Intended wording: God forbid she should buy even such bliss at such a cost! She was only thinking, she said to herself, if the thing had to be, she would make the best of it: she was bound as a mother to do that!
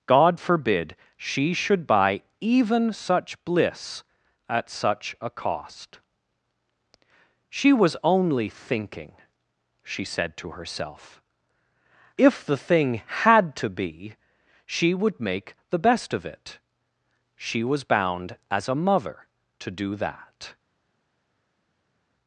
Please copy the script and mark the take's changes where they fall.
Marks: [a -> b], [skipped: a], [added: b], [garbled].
God forbid she should buy even such bliss at such a cost! She was only thinking, she said to herself, if the thing had to be, she would make the best of it: she was bound as a mother to do that!